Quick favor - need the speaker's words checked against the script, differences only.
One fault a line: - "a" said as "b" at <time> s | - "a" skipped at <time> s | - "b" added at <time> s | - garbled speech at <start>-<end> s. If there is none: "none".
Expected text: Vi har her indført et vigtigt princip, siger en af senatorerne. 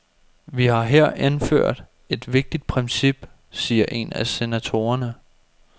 none